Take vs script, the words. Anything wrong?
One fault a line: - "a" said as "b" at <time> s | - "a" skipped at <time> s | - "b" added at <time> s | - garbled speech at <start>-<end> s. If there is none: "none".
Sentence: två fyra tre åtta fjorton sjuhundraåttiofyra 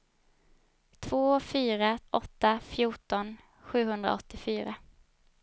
- "tre" skipped at 2.0 s